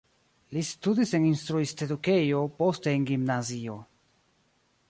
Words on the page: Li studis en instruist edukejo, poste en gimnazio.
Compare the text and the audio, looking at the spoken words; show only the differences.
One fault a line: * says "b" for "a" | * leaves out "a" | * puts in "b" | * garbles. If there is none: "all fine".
all fine